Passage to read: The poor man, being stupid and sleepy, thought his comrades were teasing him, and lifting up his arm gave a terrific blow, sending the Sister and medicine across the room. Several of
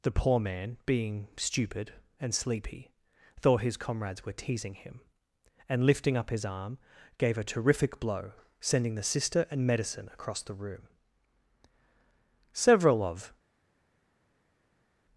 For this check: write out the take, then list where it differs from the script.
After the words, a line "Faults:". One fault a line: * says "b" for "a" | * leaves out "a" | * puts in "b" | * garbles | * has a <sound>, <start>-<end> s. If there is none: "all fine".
The poor man, being stupid and sleepy, thought his comrades were teasing him, and lifting up his arm gave a terrific blow, sending the Sister and medicine across the room. Several of
Faults:
all fine